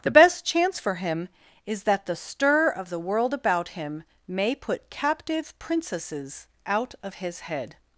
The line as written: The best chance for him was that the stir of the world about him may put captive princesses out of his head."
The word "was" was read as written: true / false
false